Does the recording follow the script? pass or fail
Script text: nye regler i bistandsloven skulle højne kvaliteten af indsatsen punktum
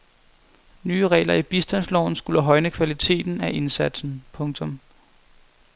pass